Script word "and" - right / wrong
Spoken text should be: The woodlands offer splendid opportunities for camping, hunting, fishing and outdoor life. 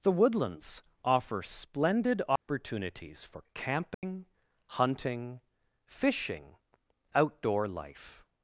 wrong